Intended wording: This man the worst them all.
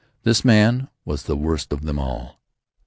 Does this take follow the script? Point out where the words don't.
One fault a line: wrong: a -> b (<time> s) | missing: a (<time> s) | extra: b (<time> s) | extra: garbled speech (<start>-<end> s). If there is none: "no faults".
extra: was (1.1 s)
extra: of (1.7 s)